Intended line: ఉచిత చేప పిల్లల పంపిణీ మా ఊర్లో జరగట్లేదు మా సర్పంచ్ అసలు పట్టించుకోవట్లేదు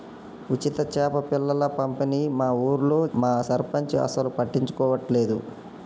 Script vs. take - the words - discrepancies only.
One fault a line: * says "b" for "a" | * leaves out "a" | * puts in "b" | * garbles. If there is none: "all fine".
* leaves out "జరగట్లేదు"